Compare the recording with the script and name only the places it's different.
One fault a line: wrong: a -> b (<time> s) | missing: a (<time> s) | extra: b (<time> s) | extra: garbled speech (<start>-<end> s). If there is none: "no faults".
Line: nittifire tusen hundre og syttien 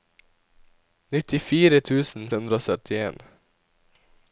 no faults